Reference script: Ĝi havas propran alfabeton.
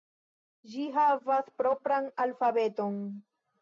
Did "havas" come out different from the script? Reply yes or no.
no